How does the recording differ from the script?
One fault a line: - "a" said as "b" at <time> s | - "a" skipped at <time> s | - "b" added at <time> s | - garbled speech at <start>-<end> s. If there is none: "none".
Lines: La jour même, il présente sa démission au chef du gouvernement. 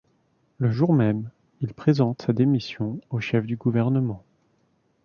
- "La" said as "Le" at 0.6 s